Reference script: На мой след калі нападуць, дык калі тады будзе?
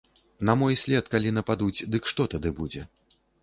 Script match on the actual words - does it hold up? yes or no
no